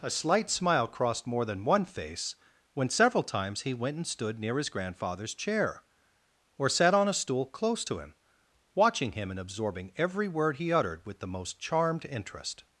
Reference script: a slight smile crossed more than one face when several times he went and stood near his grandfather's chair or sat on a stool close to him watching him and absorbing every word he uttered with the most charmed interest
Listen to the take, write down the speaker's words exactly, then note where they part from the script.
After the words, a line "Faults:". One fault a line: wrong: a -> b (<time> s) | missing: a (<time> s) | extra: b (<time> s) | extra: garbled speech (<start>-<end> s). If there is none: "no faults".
a slight smile crossed more than one face when several times he went and stood near his grandfather's chair or sat on a stool close to him watching him and absorbing every word he uttered with the most charmed interest
Faults:
no faults